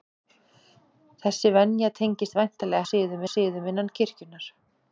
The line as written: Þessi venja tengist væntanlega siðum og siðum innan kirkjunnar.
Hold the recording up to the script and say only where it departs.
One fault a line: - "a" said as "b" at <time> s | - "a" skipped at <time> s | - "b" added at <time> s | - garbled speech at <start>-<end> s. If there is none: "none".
none